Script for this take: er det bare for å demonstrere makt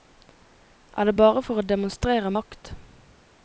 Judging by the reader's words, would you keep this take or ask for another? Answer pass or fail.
pass